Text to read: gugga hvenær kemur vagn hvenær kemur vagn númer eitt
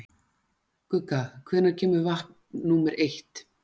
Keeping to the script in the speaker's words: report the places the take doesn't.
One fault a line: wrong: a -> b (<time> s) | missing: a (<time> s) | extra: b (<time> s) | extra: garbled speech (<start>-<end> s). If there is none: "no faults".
missing: hvenær kemur vagn (2.4 s)